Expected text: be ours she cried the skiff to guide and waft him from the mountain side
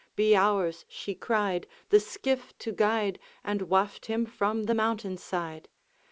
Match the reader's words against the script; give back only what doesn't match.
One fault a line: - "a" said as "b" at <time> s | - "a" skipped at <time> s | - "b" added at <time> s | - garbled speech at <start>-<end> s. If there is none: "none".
none